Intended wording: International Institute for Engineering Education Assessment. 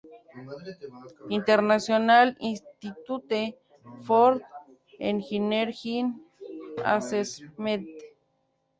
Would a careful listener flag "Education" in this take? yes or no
yes